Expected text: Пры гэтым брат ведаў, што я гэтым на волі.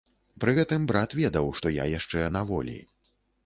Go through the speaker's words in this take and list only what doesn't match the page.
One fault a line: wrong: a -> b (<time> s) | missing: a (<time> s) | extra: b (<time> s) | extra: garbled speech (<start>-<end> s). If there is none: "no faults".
wrong: гэтым -> яшчэ (2.0 s)